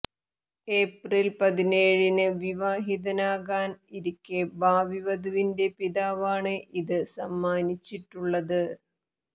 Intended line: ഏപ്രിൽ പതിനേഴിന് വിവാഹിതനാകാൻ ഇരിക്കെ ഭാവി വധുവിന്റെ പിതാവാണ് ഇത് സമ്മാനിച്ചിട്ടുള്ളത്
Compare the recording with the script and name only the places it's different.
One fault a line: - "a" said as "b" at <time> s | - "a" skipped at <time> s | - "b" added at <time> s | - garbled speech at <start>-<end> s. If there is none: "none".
none